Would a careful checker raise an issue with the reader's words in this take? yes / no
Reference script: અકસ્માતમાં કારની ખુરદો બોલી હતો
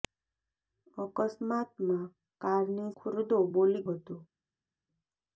no